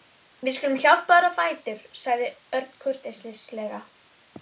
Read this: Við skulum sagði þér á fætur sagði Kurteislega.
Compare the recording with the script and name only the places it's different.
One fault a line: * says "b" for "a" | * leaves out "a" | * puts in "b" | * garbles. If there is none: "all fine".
* says "hjálpa" for "sagði"
* puts in "Örn"